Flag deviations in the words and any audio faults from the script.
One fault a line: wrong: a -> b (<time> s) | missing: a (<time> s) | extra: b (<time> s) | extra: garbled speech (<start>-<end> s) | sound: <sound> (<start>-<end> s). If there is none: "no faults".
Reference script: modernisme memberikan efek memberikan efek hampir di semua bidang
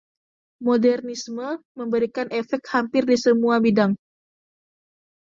missing: memberikan efek (2.7 s)